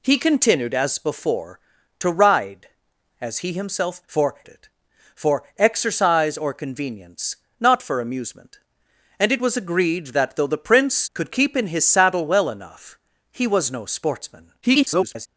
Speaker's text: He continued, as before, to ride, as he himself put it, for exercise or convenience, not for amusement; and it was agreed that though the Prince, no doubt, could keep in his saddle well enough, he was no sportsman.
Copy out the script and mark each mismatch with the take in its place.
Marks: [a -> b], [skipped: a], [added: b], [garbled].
He continued, as before, to ride, as he himself [put -> for] it, for exercise or convenience, not for amusement; and it was agreed that though the Prince, [skipped: no doubt,] could keep in his saddle well enough, he was no sportsman. [garbled]